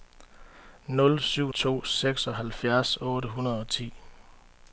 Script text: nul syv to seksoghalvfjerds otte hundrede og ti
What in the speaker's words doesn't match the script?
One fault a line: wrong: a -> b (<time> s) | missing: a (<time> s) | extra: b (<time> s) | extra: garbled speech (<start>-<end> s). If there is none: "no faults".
no faults